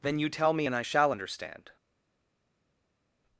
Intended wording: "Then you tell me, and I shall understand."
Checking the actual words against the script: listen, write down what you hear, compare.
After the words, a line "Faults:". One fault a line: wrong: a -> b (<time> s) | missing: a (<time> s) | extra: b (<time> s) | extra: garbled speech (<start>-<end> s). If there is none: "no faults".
"Then you tell me, and I shall understand."
Faults:
no faults